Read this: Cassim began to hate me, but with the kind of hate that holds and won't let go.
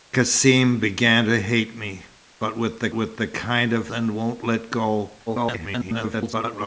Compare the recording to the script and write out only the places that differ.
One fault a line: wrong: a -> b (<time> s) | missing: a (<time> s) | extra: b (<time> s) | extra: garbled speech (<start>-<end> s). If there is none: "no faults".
extra: with the (2.9 s)
missing: hate that holds (3.9 s)
extra: garbled speech (5.3-6.7 s)